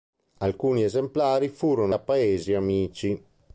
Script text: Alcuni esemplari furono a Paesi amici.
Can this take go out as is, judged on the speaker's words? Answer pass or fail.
pass